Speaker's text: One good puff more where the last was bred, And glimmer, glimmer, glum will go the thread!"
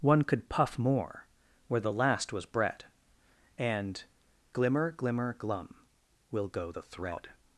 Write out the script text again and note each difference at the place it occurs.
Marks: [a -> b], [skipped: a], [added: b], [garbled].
One [good -> could] puff more where the last was bred, And glimmer, glimmer, glum will go the thread!"